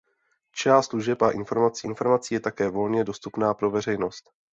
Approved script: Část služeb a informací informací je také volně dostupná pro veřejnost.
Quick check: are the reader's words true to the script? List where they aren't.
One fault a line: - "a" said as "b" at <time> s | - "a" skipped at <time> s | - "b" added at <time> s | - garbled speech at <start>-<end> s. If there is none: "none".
none